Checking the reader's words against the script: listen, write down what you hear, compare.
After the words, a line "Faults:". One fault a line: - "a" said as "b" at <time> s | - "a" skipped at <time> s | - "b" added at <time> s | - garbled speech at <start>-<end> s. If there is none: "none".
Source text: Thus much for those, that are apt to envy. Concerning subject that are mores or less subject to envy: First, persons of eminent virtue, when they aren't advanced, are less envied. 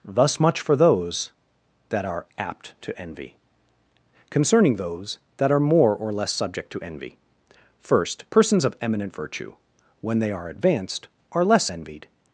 Thus much for those, that are apt to envy. Concerning those that are more or less subject to envy: First, persons of eminent virtue, when they are advanced, are less envied.
Faults:
- "subject" said as "those" at 4.8 s
- "mores" said as "more" at 5.6 s
- "aren't" said as "are" at 10.3 s